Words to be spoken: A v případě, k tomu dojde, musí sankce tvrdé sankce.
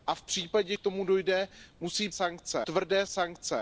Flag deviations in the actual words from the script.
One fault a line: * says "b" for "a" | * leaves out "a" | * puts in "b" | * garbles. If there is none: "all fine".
all fine